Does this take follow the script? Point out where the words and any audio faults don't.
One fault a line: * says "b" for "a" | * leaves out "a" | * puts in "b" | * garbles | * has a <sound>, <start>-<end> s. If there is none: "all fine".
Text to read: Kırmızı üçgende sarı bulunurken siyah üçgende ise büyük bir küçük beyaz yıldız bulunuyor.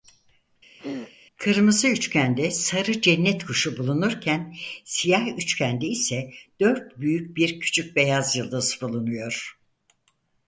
* has a throat clearing, 0.8-1.2 s
* puts in "cennet kuşu"
* puts in "dört"